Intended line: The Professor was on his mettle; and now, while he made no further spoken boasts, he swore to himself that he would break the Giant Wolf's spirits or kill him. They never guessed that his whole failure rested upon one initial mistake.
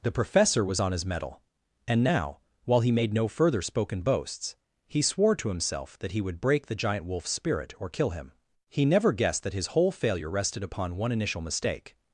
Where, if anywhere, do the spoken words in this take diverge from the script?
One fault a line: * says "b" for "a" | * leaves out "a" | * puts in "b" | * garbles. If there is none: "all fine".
* says "spirit" for "spirits"
* says "He" for "They"